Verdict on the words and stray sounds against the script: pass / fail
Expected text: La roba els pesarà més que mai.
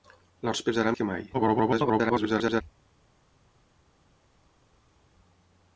fail